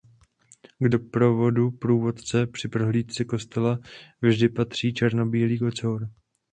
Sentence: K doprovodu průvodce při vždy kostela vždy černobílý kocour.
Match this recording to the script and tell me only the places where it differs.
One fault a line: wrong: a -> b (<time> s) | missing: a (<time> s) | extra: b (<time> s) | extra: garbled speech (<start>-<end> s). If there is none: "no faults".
wrong: vždy -> prohlídce (2.7 s)
extra: patří (4.5 s)